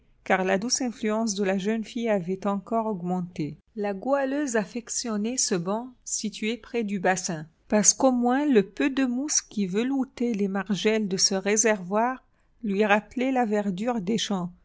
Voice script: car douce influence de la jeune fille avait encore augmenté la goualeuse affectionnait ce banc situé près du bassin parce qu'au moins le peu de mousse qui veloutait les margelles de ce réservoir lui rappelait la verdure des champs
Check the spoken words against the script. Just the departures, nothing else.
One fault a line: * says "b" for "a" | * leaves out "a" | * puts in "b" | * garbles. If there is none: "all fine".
* puts in "la"